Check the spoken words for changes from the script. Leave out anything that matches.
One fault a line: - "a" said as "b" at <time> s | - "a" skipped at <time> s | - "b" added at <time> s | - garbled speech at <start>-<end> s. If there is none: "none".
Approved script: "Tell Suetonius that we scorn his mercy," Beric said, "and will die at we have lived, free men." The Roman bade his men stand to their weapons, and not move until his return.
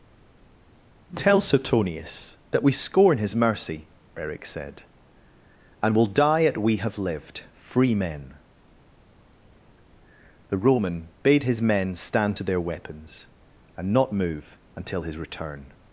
none